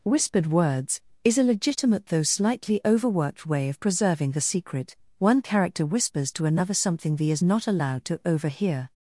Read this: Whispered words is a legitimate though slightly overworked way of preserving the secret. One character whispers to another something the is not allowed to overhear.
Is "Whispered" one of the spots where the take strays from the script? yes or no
no